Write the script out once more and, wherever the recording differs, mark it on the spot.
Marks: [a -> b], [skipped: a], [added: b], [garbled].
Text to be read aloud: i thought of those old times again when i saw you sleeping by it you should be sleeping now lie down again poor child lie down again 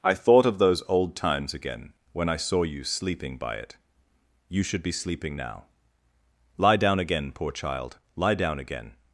i thought of those old times again when i saw you sleeping by it you should be sleeping now lie down again poor child lie down again